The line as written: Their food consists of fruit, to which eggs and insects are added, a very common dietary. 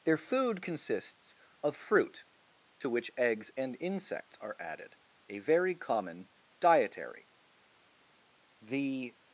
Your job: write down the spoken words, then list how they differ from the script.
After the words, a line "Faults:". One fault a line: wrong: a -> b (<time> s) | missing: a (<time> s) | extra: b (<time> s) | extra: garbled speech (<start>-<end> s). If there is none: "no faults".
Their food consists of fruit, to which eggs and insects are added, a very common dietary. The
Faults:
extra: The (8.6 s)